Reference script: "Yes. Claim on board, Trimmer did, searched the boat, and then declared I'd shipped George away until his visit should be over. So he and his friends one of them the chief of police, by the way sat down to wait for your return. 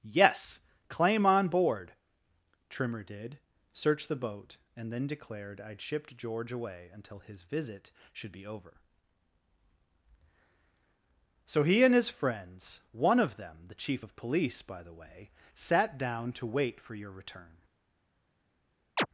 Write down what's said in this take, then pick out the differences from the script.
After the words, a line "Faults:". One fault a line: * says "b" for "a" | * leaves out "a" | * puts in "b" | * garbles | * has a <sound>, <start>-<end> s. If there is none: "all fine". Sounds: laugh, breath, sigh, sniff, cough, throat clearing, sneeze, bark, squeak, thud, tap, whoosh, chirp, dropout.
"Yes. Claim on board, Trimmer did, searched the boat, and then declared I'd shipped George away until his visit should be over. So he and his friends one of them the chief of police, by the way sat down to wait for your return.
Faults:
* has a chirp, 19.0-19.1 s